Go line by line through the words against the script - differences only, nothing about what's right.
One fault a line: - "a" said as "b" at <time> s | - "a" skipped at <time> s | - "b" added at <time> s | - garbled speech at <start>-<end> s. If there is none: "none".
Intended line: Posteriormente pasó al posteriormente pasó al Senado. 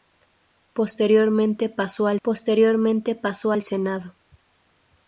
none